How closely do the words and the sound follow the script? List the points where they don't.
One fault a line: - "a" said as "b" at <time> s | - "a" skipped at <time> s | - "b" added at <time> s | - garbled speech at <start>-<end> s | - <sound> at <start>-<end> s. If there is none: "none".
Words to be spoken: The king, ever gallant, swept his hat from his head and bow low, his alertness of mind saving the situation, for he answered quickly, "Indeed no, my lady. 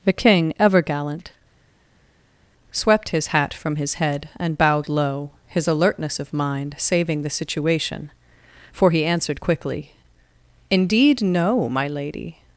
- "bow" said as "bowed" at 4.6 s